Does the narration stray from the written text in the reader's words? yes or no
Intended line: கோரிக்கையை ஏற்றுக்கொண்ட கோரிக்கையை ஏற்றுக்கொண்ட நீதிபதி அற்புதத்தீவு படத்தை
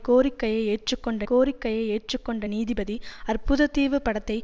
no